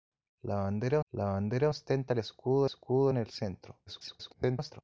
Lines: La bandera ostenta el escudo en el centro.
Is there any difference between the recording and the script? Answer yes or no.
yes